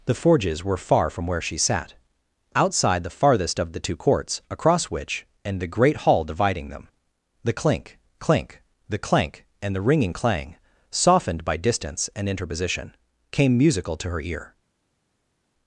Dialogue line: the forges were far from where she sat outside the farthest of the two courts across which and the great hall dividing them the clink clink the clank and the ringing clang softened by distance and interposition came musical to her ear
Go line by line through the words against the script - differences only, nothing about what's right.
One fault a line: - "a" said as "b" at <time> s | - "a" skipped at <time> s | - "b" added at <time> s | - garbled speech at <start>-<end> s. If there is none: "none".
none